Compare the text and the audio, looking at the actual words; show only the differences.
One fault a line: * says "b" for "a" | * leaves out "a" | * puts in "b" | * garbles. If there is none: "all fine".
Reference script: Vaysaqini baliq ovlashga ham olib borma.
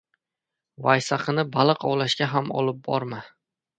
all fine